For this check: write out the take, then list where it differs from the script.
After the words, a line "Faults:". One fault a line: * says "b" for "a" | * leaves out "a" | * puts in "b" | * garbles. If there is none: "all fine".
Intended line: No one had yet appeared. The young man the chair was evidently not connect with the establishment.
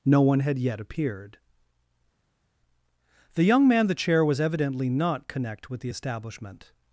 No one had yet appeared. The young man the chair was evidently not connect with the establishment.
Faults:
all fine